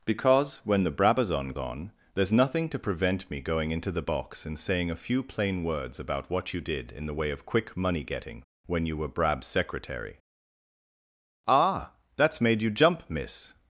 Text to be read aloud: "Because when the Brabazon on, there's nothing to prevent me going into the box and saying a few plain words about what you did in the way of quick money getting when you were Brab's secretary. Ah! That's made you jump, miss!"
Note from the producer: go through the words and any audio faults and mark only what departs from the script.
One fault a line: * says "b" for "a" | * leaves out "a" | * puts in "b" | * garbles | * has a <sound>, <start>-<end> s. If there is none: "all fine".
all fine